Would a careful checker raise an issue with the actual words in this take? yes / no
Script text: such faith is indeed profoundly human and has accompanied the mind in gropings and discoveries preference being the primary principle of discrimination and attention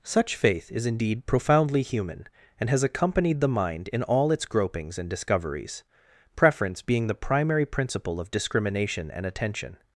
yes